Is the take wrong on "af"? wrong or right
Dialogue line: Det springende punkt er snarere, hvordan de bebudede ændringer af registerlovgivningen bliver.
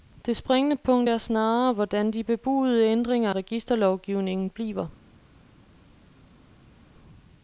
wrong